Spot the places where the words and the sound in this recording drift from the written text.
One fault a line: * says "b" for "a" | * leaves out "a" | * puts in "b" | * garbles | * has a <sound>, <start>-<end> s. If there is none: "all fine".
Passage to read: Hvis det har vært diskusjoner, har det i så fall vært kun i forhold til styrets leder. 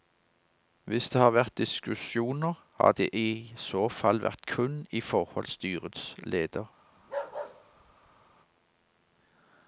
* leaves out "til"
* has a bark, 7.0-8.4 s